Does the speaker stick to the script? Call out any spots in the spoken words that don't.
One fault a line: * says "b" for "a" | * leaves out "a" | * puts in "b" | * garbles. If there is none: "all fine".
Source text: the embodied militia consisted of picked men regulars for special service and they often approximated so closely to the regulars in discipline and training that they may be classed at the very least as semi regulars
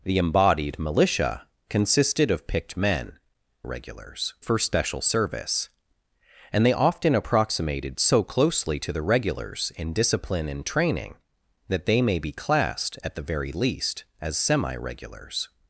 all fine